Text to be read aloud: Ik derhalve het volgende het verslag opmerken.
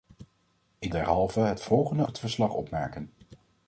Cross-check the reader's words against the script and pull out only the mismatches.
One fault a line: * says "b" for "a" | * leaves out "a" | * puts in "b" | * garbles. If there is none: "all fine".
all fine